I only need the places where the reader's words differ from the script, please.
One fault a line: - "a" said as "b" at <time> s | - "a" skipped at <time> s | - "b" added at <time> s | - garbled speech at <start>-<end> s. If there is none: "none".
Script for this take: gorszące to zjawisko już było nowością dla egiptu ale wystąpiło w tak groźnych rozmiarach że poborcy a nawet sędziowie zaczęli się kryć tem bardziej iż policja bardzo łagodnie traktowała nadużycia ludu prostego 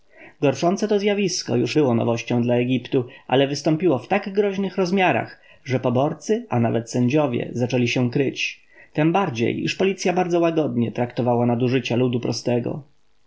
none